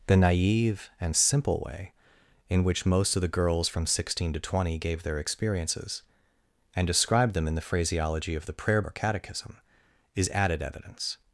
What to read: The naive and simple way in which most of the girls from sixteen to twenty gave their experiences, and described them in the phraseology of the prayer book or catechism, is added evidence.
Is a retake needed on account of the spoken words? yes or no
yes